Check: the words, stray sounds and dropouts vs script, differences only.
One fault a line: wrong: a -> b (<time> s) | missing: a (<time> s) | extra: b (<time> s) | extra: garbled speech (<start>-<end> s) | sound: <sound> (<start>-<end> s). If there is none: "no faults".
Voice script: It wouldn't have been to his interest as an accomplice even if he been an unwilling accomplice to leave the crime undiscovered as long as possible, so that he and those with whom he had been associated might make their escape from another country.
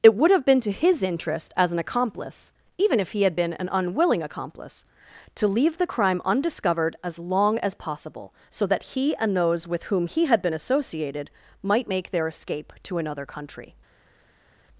wrong: wouldn't -> would (0.1 s)
extra: had (3.2 s)
wrong: from -> to (12.8 s)